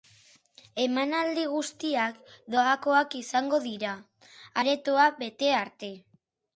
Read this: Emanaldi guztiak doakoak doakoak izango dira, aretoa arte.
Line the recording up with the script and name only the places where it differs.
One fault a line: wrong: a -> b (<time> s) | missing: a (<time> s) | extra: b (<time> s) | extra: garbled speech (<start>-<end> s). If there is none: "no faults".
missing: doakoak (3.1 s)
extra: bete (5.2 s)